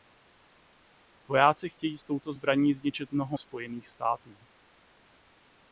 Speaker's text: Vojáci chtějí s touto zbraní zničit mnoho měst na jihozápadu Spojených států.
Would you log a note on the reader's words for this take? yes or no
yes